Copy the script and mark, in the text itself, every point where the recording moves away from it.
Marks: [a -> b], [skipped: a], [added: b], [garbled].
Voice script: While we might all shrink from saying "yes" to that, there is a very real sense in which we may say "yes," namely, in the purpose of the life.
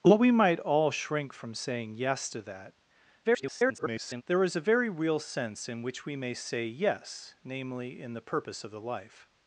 While we might all shrink from saying "yes" to that, [garbled] there is a very real sense in which we may say "yes," namely, in the purpose of the life.